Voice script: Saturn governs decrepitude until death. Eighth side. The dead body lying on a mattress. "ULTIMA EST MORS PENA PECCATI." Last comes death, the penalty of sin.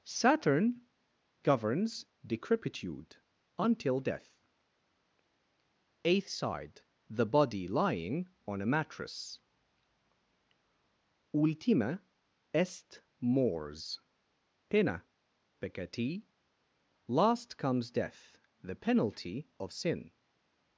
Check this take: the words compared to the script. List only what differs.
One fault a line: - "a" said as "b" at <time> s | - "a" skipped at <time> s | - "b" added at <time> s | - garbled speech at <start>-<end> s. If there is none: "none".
- "dead" skipped at 7.2 s